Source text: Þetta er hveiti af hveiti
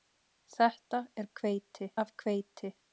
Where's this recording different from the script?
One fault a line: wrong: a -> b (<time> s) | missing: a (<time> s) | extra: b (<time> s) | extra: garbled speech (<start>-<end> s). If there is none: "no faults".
no faults